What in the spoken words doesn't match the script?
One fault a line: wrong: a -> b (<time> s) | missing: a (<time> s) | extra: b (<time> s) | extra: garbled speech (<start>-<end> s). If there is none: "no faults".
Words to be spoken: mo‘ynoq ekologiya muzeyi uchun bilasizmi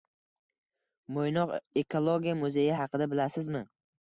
wrong: uchun -> haqida (2.8 s)